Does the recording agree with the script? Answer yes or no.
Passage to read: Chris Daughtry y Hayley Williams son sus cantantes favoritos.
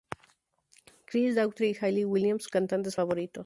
no